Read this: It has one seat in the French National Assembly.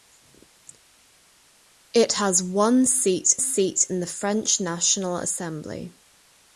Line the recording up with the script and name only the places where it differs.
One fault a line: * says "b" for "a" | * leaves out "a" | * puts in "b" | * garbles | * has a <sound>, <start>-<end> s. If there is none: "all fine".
* puts in "seat"